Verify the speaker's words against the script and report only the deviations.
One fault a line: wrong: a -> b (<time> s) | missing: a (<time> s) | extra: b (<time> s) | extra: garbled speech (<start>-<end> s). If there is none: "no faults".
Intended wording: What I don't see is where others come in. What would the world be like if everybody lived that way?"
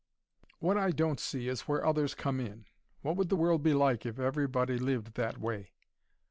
no faults